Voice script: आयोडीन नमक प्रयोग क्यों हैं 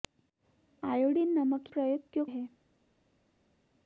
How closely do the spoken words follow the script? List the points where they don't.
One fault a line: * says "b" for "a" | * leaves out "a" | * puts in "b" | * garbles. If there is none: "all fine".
all fine